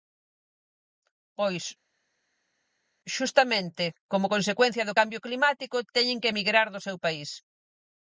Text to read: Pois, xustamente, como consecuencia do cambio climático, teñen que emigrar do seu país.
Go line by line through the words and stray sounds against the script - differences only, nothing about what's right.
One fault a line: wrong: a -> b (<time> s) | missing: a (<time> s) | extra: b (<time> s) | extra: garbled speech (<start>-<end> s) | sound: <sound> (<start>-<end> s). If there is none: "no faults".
no faults